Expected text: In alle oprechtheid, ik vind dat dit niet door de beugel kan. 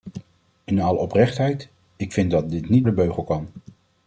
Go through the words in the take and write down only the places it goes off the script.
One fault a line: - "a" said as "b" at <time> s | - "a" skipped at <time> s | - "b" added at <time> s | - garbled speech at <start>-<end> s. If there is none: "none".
- "door" skipped at 2.9 s